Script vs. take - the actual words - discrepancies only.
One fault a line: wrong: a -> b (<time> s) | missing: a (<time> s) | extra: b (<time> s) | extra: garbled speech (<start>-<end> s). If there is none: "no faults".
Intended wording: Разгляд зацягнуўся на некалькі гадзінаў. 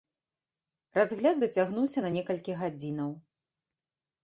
no faults